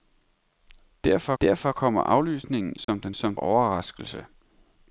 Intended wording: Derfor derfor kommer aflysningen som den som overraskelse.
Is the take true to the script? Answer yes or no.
yes